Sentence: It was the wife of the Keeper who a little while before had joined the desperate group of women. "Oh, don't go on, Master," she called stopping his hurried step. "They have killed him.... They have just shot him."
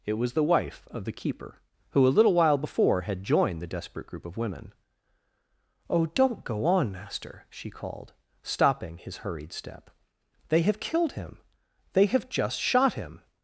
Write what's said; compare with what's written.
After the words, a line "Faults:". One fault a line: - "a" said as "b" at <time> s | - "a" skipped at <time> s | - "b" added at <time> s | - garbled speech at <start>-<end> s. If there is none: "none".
It was the wife of the Keeper who a little while before had joined the desperate group of women. "Oh, don't go on, Master," she called stopping his hurried step. "They have killed him.... They have just shot him."
Faults:
none